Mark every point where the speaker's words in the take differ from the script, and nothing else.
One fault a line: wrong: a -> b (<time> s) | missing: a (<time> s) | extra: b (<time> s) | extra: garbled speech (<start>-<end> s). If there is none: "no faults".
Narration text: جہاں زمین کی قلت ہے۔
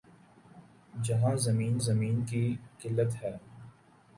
extra: زمین (1.8 s)